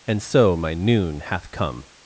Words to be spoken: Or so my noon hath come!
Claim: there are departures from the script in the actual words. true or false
true